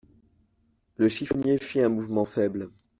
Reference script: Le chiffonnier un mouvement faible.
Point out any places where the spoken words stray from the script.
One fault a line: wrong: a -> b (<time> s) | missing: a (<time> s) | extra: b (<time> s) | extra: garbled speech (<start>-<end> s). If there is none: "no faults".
extra: fit (1.6 s)